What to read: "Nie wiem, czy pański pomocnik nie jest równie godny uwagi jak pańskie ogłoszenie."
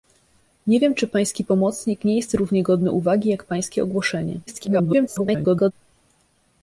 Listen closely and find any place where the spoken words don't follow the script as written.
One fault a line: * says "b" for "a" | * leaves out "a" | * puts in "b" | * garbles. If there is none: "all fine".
* garbles